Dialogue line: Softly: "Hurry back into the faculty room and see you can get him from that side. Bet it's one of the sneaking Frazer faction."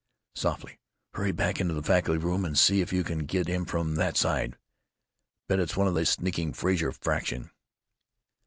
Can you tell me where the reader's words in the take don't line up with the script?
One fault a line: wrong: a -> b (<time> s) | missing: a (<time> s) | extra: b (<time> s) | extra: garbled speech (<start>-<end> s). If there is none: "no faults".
extra: if (2.8 s)